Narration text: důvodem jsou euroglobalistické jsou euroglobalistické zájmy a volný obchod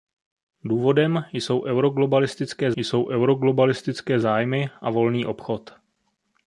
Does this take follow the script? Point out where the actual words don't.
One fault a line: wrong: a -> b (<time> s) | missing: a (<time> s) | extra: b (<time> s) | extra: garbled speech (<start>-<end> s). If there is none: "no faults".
no faults